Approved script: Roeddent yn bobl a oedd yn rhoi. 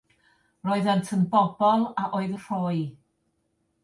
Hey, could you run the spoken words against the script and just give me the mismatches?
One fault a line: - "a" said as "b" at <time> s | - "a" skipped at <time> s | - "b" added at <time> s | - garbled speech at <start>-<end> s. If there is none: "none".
- "yn" skipped at 2.3 s